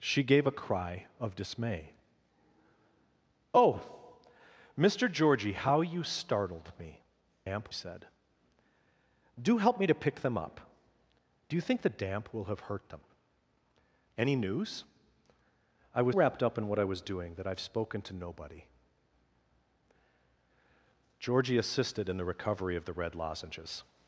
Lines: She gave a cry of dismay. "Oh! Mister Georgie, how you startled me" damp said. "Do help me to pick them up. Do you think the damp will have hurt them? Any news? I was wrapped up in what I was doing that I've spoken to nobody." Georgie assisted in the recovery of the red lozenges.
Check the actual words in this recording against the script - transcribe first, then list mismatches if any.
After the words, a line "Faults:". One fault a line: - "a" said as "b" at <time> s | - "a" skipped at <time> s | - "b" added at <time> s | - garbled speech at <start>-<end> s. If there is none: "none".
She gave a cry of dismay. "Oh! Mister Georgie, how you startled me" damp said. "Do help me to pick them up. Do you think the damp will have hurt them? Any news? I was wrapped up in what I was doing that I've spoken to nobody." Georgie assisted in the recovery of the red lozenges.
Faults:
none